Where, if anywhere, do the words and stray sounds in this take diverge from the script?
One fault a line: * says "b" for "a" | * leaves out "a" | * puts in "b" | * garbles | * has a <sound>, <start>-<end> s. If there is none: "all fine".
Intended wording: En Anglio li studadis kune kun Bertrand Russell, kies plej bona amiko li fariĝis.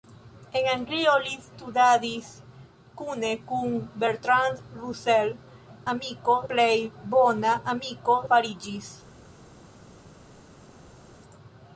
* says "amiko" for "kies"
* leaves out "li"